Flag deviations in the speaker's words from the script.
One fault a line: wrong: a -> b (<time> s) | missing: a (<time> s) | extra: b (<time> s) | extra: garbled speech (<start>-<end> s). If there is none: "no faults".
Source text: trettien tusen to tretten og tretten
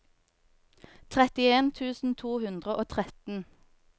wrong: tretten -> hundre (2.5 s)